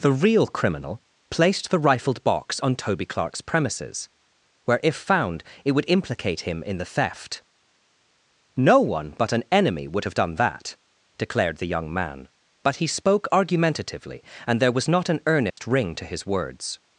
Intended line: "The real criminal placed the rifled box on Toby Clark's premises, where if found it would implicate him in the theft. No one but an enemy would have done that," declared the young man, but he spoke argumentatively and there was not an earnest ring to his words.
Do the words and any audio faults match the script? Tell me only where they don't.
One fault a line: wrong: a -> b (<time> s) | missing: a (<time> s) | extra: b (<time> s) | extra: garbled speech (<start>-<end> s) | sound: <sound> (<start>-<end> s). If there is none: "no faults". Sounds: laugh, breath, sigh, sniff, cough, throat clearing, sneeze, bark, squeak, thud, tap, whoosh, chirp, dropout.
sound: dropout (15.5-15.6 s)